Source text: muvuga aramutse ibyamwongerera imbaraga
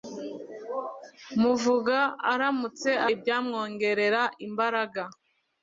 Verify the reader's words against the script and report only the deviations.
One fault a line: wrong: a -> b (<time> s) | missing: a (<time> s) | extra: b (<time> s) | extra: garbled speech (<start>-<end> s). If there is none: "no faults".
no faults